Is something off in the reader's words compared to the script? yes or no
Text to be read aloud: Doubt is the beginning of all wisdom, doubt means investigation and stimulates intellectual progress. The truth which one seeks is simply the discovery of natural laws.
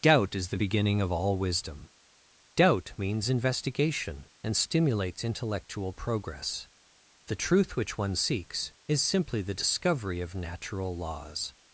no